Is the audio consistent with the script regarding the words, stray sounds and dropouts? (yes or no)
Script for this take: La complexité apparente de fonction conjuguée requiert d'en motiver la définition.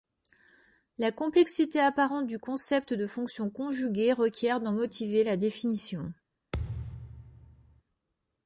no